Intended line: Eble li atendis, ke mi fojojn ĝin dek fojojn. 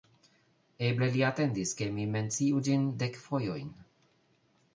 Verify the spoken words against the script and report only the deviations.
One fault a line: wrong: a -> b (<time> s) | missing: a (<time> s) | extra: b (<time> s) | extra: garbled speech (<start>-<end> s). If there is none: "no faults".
wrong: fojojn -> menciu (2.1 s)